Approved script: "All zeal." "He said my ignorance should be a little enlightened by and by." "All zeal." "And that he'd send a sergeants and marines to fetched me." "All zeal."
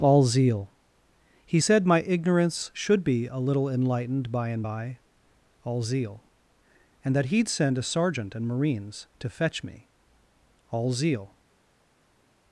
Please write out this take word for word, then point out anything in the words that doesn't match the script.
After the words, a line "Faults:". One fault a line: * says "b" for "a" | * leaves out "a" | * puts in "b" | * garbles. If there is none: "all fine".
"All zeal." "He said my ignorance should be a little enlightened by and by." "All zeal." "And that he'd send a sergeant and marines to fetch me." "All zeal."
Faults:
* says "sergeant" for "sergeants"
* says "fetch" for "fetched"